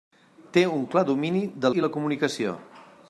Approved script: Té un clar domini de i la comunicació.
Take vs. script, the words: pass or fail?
pass